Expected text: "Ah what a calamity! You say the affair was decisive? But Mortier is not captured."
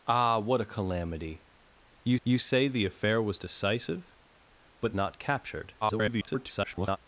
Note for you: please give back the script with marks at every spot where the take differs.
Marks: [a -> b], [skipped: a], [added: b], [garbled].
"Ah what a calamity! You [added: you] say the affair was decisive? But [skipped: Mortier is] not captured." [garbled]